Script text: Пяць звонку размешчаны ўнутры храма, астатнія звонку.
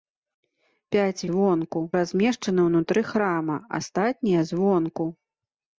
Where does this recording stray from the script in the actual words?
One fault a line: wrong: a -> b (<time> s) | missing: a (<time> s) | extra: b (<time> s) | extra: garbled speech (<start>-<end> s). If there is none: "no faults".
no faults